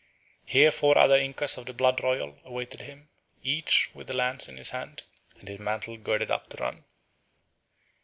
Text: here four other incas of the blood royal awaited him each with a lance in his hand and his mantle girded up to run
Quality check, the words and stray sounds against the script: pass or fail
pass